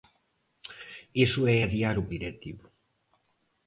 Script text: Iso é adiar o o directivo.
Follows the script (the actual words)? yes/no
yes